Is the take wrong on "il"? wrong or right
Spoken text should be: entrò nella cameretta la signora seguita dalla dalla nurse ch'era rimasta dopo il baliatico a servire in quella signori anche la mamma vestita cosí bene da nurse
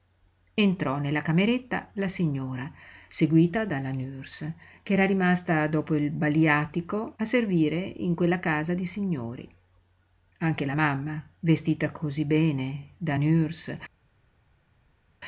right